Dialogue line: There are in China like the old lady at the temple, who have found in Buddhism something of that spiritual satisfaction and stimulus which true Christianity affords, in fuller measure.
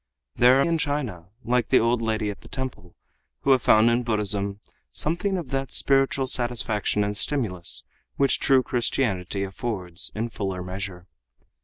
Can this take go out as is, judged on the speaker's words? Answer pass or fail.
pass